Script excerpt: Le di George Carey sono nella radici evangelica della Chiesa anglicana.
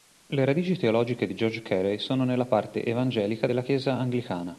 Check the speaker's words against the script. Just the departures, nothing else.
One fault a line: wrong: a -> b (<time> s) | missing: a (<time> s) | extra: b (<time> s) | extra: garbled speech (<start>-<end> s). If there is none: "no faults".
extra: radici teologiche (0.5 s)
wrong: radici -> parte (2.5 s)